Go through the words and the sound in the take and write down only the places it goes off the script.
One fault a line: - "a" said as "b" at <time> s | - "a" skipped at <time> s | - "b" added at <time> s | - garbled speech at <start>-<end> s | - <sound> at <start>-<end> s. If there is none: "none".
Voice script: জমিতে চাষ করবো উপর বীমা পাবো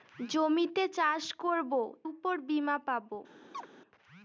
- chirp at 3.5-3.7 s